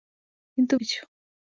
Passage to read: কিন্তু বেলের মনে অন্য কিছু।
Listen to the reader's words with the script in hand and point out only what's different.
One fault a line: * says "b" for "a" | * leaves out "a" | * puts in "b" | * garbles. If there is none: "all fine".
* leaves out "বেলের মনে অন্য"